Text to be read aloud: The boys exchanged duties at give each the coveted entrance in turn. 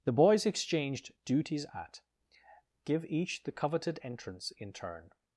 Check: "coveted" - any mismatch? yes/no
no